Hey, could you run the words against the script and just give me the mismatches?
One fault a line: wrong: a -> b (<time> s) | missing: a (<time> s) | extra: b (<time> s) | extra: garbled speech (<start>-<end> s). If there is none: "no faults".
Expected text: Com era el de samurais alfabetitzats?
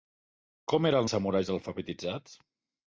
no faults